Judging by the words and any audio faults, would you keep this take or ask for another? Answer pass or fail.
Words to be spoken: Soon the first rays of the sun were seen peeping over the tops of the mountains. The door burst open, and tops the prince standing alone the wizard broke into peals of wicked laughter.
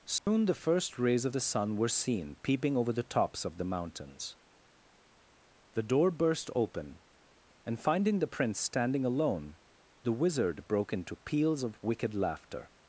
fail